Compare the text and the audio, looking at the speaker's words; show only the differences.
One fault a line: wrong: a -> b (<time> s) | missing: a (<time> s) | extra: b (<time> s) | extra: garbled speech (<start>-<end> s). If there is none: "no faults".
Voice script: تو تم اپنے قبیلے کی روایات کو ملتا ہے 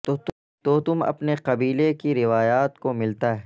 no faults